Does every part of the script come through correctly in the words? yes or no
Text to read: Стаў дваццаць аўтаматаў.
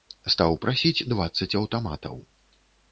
no